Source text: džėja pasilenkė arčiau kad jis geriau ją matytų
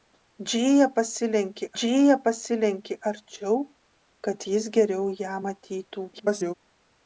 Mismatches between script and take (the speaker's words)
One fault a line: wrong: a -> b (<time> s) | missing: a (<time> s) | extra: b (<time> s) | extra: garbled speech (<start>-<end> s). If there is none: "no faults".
extra: džėja pasilenkė (1.8 s)
extra: garbled speech (6.1-6.5 s)